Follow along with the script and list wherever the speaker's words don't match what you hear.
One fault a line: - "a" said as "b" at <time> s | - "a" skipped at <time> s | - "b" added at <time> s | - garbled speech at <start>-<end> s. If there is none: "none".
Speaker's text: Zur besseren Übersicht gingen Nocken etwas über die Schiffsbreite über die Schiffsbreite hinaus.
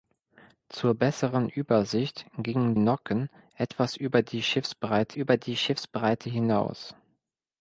none